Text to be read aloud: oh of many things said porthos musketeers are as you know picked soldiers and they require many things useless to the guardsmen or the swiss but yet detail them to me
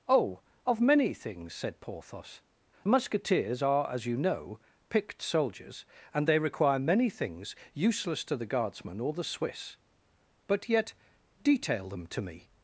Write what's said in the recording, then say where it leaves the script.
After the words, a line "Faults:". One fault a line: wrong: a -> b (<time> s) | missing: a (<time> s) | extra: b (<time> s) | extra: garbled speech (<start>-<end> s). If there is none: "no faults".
oh of many things said porthos musketeers are as you know picked soldiers and they require many things useless to the guardsmen or the swiss but yet detail them to me
Faults:
no faults